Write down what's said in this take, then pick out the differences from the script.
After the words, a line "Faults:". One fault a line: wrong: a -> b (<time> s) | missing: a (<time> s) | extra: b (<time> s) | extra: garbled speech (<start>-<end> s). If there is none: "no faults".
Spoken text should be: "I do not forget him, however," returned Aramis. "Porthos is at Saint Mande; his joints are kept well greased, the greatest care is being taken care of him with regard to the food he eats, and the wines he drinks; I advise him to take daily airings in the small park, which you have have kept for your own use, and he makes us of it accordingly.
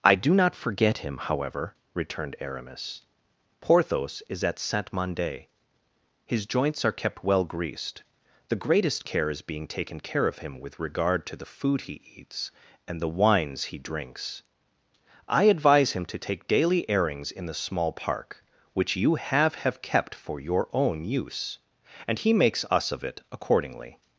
"I do not forget him, however," returned Aramis. "Porthos is at Saint Mande; his joints are kept well greased, the greatest care is being taken care of him with regard to the food he eats, and the wines he drinks; I advise him to take daily airings in the small park, which you have have kept for your own use, and he makes us of it accordingly.
Faults:
no faults